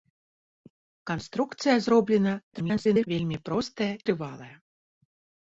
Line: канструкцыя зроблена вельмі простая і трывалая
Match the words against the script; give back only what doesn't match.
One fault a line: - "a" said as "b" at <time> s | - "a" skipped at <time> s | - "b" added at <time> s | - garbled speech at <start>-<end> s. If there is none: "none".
- garbled speech at 2.5-3.1 s
- "і" skipped at 3.9 s